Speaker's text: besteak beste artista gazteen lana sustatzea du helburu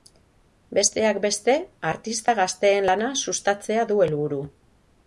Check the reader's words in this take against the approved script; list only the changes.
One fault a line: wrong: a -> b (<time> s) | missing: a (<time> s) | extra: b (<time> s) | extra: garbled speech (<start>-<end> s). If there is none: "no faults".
no faults